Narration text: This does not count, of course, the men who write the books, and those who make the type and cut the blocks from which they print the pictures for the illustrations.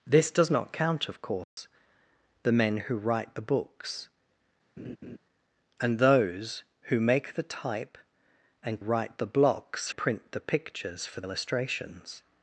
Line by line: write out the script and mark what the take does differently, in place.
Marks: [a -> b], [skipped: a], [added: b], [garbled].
This does not count, of course, the men who write the books, and those who make the type and [cut -> write] the blocks [skipped: from which they] print the pictures for [skipped: the] illustrations.